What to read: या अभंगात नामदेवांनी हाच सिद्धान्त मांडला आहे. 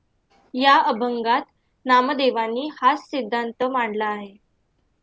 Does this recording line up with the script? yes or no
yes